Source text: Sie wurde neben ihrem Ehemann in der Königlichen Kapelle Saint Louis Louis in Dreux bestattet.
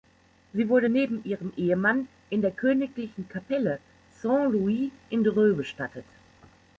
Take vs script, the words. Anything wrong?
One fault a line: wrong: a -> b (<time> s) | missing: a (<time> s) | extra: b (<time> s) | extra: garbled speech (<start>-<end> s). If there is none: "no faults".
missing: Louis (4.9 s)